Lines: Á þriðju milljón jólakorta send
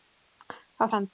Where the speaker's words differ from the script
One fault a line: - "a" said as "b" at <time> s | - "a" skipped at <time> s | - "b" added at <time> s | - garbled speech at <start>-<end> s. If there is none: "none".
- "þriðju milljón jólakorta" skipped at 0.8 s